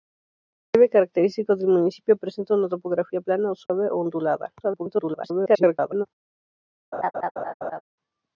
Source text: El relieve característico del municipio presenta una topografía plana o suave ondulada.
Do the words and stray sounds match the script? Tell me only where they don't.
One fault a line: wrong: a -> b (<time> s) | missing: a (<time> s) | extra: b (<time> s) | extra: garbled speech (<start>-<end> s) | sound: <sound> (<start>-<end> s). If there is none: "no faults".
sound: dropout (3.7-3.7 s)
extra: garbled speech (4.6-6.1 s)
sound: laugh (6.9-7.8 s)